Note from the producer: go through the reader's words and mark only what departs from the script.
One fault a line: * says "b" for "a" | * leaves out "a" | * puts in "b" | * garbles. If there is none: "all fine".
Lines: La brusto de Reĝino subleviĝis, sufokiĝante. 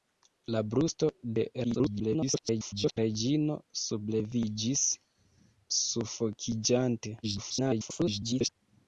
* garbles
* garbles